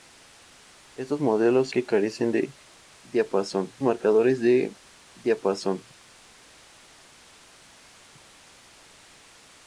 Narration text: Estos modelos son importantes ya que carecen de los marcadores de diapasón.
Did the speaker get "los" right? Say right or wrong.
wrong